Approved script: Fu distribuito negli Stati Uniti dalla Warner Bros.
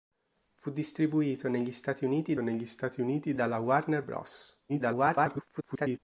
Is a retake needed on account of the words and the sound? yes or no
yes